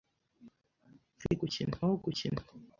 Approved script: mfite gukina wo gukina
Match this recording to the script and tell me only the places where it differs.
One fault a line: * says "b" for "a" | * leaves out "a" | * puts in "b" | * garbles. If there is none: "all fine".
all fine